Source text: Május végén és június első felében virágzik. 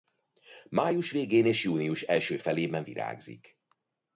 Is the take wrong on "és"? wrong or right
right